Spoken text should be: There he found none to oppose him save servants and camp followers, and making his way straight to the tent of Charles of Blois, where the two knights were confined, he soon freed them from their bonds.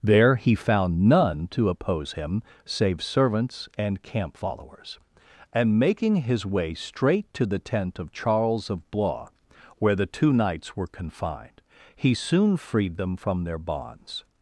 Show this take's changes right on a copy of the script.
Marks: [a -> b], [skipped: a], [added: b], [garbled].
There he found none to oppose him save servants and camp followers, and making his way straight to the tent of Charles of Blois, where the two knights were confined, he soon freed them from their bonds.